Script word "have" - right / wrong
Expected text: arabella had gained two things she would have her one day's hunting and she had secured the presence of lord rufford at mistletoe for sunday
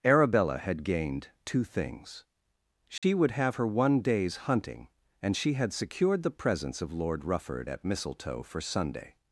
right